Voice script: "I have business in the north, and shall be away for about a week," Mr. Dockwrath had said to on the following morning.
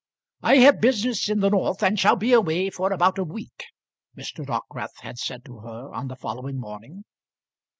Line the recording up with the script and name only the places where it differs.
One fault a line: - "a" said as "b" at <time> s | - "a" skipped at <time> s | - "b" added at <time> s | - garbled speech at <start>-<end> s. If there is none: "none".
- "her" added at 5.6 s